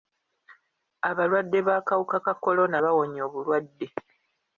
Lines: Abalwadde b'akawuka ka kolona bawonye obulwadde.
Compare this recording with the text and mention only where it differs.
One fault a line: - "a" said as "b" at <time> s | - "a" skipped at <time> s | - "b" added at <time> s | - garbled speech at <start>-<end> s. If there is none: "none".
none